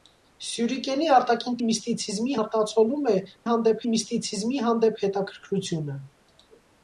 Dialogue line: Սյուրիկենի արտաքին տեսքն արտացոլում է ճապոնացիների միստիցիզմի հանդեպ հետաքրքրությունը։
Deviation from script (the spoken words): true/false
true